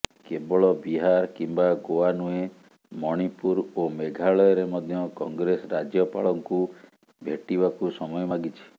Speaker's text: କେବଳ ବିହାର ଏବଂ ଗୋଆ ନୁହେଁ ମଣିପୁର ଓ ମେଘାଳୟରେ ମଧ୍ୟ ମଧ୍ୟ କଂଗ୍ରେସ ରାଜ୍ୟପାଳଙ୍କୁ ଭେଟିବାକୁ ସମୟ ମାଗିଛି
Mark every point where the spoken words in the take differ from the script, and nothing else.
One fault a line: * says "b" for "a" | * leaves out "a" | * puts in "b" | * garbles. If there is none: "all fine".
* says "କିମ୍ବା" for "ଏବଂ"
* leaves out "ମଧ୍ୟ"